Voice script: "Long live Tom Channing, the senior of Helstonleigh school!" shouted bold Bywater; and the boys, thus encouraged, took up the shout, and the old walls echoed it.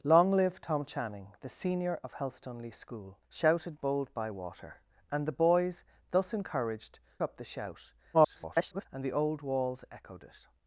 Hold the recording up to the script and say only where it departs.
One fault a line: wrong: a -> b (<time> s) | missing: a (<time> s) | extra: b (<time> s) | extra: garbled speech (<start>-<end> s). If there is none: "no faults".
missing: took (7.0 s)
extra: garbled speech (8.1-8.9 s)